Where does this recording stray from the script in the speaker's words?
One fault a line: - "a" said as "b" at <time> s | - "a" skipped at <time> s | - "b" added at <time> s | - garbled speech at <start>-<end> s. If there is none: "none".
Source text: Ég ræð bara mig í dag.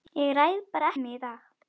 none